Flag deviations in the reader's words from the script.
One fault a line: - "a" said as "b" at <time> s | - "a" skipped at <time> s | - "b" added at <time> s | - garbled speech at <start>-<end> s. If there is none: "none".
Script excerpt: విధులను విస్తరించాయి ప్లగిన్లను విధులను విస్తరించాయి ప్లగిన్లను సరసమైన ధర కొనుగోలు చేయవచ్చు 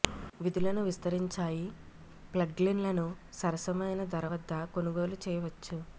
- "విధులను విస్తరించాయి ప్లగిన్లను" skipped at 3.1 s
- "వద్ద" added at 4.3 s